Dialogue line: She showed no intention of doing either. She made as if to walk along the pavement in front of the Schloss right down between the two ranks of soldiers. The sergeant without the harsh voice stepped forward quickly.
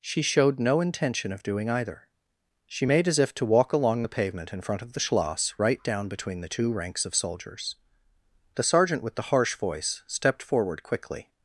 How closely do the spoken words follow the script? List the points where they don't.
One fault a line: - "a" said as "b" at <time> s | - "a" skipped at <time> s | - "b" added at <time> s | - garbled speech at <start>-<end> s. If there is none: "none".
- "without" said as "with" at 9.0 s